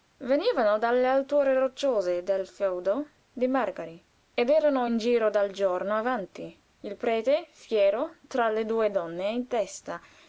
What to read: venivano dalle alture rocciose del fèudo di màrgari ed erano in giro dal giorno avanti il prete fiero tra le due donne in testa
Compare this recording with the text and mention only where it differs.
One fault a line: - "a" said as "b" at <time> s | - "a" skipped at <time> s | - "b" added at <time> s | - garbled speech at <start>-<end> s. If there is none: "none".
none